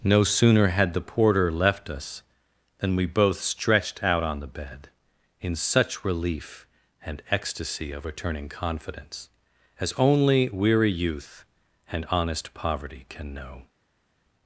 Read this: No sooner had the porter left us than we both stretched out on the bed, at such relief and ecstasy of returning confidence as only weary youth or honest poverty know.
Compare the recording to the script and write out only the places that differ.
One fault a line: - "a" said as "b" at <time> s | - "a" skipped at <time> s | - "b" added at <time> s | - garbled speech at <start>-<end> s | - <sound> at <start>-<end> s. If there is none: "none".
- "at" said as "in" at 5.4 s
- "or" said as "and" at 11.9 s
- "can" added at 13.1 s